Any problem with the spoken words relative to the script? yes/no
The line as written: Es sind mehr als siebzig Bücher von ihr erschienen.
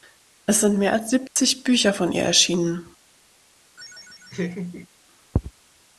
no